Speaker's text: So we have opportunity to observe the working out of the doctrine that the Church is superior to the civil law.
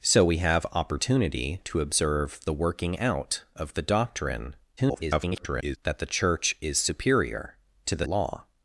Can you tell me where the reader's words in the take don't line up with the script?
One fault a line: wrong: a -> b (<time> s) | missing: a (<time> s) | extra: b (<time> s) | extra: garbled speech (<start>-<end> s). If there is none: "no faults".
extra: garbled speech (4.8-5.8 s)
missing: civil (8.1 s)